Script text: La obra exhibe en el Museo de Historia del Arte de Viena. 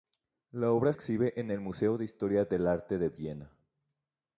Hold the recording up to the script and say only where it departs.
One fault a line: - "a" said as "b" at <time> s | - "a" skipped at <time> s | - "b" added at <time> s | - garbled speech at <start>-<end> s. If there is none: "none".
none